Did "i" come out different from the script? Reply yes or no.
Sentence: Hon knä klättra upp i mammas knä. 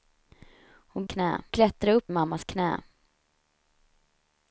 no